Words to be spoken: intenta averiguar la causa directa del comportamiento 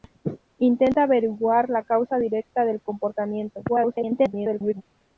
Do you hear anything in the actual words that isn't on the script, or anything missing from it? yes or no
yes